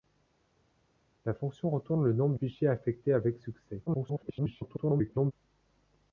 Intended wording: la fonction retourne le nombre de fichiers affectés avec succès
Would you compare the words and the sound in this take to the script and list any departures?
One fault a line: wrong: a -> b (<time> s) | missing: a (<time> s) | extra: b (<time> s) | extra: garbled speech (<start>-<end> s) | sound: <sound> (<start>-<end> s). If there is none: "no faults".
missing: de (2.4 s)
extra: garbled speech (3.9-5.3 s)